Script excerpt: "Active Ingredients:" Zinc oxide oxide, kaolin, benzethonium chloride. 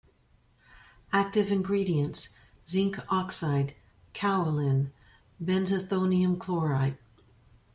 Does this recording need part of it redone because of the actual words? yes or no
yes